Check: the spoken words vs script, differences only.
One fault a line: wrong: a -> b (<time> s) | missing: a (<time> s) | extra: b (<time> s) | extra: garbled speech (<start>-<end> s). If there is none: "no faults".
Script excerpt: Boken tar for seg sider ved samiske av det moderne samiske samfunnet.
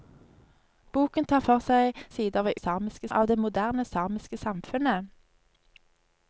no faults